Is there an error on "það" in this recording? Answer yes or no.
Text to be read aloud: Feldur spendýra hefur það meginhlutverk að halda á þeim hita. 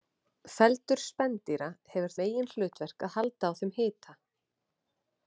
yes